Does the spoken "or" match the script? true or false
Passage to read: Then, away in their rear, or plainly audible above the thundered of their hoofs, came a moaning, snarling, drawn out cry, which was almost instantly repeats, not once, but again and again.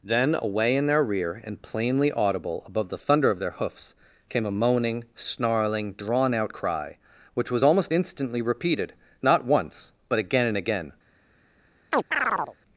false